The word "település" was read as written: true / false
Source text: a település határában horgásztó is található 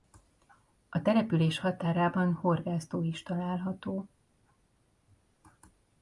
true